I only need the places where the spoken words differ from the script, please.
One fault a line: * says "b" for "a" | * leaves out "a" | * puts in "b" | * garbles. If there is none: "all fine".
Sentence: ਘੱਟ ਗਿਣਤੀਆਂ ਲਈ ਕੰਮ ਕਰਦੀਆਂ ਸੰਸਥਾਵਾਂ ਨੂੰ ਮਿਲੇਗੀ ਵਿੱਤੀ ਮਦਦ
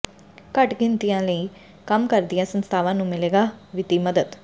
all fine